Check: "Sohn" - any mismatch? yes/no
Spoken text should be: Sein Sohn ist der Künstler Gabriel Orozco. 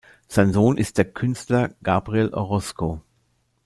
no